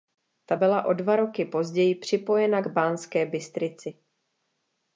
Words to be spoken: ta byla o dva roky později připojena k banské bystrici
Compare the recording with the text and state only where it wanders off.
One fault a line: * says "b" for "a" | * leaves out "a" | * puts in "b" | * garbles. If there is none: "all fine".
all fine